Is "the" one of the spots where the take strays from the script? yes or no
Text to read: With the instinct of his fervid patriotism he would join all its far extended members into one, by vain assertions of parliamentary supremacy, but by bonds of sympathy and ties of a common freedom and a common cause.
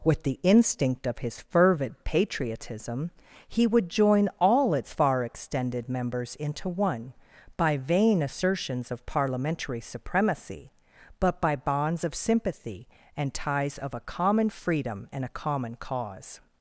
no